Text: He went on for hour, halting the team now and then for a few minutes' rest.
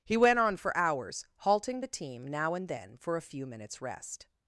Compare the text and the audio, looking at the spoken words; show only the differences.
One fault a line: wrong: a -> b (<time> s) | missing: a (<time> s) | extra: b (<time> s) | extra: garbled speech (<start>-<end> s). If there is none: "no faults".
wrong: hour -> hours (0.8 s)